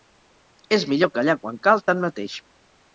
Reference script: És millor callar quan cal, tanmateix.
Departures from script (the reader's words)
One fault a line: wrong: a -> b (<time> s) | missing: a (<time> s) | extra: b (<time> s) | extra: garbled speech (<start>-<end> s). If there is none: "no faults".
no faults